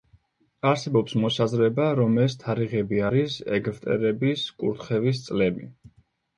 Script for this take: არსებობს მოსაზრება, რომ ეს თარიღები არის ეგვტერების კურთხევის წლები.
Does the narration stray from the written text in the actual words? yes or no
no